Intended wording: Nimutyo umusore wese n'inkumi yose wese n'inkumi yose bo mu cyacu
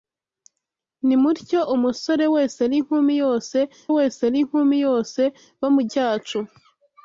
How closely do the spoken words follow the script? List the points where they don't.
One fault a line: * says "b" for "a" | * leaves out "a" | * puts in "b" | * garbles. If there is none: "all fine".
all fine